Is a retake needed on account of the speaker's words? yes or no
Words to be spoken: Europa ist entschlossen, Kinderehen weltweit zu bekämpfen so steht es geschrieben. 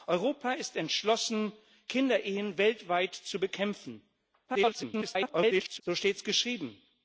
yes